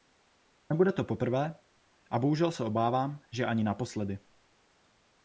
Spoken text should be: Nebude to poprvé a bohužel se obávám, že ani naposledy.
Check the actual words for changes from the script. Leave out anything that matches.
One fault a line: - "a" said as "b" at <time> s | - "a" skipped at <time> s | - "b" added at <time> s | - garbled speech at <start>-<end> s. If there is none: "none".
none